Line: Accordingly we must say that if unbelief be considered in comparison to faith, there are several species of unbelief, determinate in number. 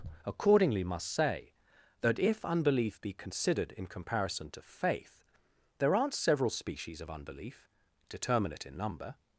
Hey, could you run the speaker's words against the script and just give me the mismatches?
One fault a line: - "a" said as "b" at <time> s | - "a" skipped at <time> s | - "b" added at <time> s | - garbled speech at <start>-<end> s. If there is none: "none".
- "we" skipped at 0.8 s
- "are" said as "aren't" at 6.0 s